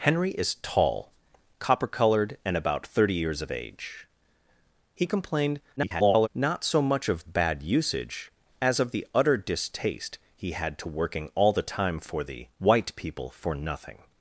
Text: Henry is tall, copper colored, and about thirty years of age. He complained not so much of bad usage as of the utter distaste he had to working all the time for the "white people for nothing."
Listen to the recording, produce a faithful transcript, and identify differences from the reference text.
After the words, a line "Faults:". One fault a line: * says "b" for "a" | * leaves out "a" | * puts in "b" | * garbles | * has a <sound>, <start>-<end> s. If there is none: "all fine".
Henry is tall, copper colored, and about thirty years of age. He complained [garbled] not so much of bad usage as of the utter distaste he had to working all the time for the "white people for nothing."
Faults:
* garbles